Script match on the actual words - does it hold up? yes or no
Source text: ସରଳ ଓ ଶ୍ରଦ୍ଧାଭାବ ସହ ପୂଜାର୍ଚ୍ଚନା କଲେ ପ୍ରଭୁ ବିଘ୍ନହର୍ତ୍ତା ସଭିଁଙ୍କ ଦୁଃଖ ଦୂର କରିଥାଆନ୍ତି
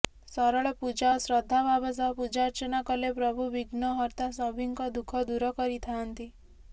no